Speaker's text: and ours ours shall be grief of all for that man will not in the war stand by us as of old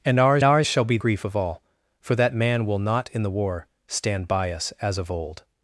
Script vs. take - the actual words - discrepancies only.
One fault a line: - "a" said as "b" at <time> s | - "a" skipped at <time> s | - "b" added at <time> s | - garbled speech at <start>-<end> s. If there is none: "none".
none